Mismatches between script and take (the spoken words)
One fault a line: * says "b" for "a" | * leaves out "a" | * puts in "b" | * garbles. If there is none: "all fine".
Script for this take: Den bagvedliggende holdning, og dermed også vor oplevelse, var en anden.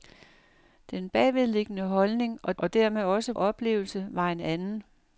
* puts in "og"
* leaves out "vor"